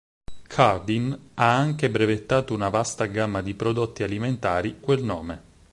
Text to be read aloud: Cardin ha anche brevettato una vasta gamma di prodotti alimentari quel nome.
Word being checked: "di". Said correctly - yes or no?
yes